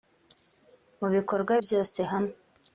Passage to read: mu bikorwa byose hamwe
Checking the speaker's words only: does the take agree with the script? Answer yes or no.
yes